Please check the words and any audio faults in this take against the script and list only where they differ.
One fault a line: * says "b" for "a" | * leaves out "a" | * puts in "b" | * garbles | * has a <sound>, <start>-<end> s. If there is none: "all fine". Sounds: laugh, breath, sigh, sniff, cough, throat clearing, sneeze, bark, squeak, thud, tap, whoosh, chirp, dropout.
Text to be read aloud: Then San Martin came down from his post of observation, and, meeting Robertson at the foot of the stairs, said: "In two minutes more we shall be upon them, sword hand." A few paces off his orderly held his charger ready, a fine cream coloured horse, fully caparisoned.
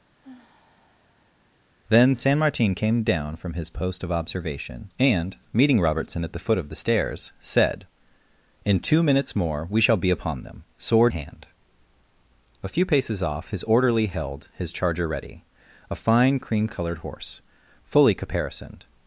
* has a sigh, 0.2-1.6 s